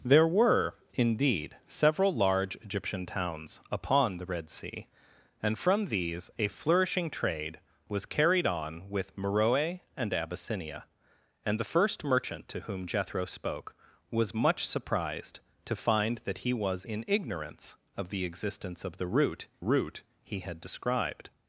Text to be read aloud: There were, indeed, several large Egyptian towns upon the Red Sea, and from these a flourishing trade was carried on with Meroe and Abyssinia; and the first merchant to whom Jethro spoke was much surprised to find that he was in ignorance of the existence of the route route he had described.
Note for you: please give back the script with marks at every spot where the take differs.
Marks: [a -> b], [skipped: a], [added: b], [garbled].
There were, indeed, several large Egyptian towns upon the Red Sea, and from these a flourishing trade was carried on with Meroe and Abyssinia; and the first merchant to whom Jethro spoke was much surprised to find that he was in ignorance of the existence of the route route he had described.